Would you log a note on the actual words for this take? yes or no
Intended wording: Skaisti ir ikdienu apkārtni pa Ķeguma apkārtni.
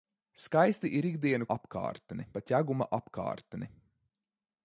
no